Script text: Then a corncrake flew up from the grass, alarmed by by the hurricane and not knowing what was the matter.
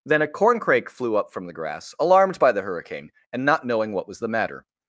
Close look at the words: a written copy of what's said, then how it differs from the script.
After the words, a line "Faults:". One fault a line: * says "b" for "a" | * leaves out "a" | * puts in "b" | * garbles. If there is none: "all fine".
Then a corncrake flew up from the grass, alarmed by the hurricane and not knowing what was the matter.
Faults:
* leaves out "by"